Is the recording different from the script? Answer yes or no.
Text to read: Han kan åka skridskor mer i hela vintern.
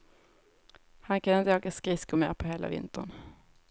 yes